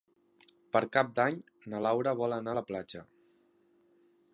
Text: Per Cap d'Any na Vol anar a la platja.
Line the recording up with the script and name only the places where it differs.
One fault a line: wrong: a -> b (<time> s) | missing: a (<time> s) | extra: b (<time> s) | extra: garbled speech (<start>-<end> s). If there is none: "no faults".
extra: Laura (1.9 s)